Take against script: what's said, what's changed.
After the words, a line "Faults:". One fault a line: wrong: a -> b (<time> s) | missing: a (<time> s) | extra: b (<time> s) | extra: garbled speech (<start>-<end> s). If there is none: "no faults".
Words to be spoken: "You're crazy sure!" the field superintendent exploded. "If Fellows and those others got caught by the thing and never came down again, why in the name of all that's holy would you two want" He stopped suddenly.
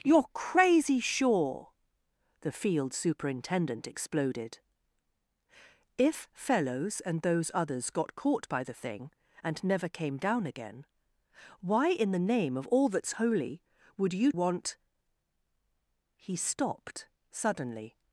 "You're crazy sure!" the field superintendent exploded. "If Fellows and those others got caught by the thing and never came down again, why in the name of all that's holy would you want" He stopped suddenly.
Faults:
missing: two (14.3 s)